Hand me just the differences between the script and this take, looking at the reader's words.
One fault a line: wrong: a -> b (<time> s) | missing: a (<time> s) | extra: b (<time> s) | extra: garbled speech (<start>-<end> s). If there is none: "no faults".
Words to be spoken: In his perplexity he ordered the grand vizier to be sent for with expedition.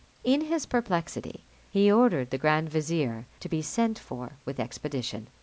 no faults